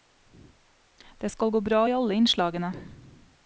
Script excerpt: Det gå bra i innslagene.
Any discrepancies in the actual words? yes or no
yes